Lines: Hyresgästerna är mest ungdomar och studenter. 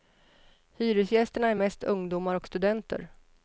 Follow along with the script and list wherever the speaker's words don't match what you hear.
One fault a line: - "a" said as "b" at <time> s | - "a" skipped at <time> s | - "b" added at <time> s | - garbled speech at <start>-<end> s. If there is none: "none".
none